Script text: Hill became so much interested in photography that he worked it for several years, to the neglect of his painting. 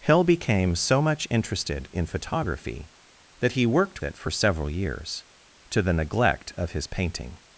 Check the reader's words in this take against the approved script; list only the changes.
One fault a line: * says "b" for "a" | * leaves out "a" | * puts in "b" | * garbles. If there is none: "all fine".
all fine